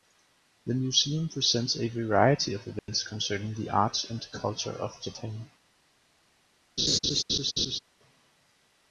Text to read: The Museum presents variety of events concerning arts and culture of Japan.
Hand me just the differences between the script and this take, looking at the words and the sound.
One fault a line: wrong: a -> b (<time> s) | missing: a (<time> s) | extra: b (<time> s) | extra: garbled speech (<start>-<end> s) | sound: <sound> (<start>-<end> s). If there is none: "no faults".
extra: a (1.8 s)
sound: dropout (2.8-2.9 s)
extra: the (3.5 s)
sound: laugh (6.8-7.8 s)